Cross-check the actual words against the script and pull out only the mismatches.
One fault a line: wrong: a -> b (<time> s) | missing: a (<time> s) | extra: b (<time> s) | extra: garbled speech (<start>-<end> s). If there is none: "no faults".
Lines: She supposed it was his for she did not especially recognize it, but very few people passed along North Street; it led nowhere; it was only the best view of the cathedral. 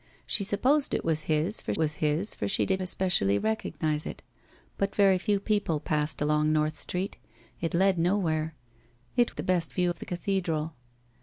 extra: was his for (1.8 s)
missing: not (2.8 s)
missing: was only (9.4 s)